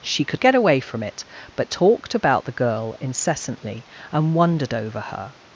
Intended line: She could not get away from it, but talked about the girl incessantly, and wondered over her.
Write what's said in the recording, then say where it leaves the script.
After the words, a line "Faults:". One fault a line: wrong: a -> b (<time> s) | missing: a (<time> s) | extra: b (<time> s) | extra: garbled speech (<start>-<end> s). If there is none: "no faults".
She could get away from it, but talked about the girl incessantly, and wondered over her.
Faults:
missing: not (0.4 s)